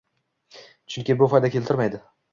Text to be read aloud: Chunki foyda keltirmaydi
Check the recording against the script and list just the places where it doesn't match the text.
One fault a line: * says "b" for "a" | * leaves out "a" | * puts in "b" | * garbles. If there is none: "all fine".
* puts in "bu"